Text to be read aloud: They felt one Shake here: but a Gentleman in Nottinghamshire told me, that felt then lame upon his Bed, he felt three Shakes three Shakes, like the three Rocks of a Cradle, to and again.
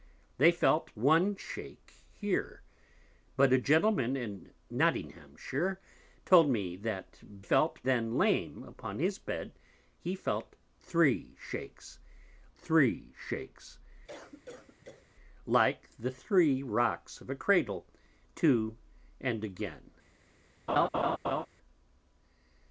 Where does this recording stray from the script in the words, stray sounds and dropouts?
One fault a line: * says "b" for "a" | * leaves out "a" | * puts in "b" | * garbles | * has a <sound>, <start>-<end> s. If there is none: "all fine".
* has a cough, 14.1-15.1 s
* has a laugh, 20.7-21.5 s